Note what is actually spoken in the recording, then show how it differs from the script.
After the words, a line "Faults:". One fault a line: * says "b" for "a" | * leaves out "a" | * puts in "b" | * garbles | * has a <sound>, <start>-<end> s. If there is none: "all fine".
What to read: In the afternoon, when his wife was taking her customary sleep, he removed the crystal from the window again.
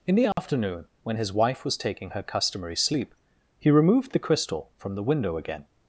In the afternoon, when his wife was taking her customary sleep, he removed the crystal from the window again.
Faults:
* has a dropout, 0.3-0.4 s